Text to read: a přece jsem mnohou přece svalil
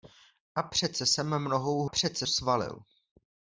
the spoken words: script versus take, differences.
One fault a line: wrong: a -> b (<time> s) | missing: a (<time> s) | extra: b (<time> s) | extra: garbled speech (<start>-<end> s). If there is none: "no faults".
no faults